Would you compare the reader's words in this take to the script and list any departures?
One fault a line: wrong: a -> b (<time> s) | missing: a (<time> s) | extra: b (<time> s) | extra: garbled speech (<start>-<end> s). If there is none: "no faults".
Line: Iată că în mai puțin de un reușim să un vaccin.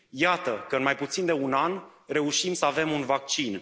extra: an (1.5 s)
extra: avem (2.6 s)